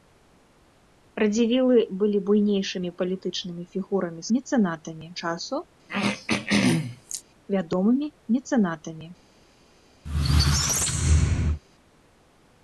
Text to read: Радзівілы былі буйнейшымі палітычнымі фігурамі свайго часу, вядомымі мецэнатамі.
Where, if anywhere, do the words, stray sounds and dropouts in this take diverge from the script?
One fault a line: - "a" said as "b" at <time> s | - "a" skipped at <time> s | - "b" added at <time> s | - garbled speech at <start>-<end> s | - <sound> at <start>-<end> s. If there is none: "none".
- "свайго" said as "мецэнатамі" at 4.4 s
- throat clearing at 5.9-7.2 s
- squeak at 10.0-11.6 s